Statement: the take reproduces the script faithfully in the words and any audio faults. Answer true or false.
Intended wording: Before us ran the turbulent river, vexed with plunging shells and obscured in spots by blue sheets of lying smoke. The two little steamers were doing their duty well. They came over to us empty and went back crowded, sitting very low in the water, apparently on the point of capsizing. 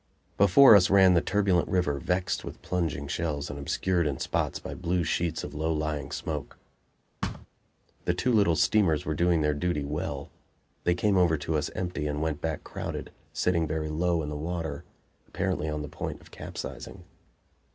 false